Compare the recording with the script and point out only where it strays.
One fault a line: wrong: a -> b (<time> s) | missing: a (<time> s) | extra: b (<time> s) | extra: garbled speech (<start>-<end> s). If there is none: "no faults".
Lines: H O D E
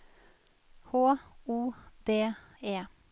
no faults